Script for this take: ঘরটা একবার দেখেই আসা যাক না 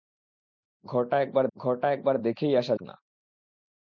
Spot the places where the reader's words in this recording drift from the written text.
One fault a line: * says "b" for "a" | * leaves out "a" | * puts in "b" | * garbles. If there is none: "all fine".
* puts in "ঘরটা একবার"
* leaves out "যাক"